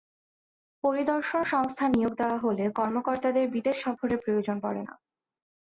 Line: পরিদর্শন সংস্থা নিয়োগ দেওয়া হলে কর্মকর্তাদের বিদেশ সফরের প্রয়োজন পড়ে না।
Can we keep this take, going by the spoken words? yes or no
yes